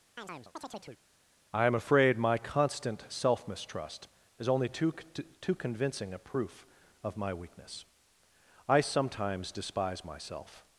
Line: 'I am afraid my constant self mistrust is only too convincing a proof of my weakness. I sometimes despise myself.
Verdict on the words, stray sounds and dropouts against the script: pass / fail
fail